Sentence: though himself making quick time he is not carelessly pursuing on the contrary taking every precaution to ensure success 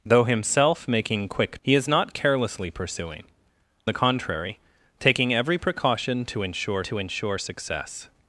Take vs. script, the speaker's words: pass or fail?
fail